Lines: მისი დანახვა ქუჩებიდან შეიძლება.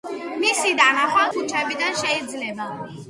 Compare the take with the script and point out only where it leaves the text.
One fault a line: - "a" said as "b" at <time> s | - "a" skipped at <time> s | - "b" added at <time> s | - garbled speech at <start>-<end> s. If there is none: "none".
none